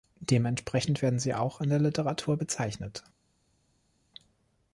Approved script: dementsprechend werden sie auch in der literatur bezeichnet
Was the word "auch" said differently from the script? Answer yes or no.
no